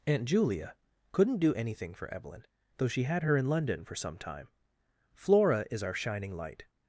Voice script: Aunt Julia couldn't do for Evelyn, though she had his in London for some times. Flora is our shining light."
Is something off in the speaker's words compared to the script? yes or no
yes